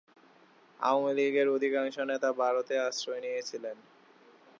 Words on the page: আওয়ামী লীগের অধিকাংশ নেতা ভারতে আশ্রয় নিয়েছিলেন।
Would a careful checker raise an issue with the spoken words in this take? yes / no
no